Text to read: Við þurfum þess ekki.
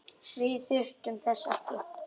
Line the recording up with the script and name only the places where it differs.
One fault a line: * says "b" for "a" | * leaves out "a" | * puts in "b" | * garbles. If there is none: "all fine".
all fine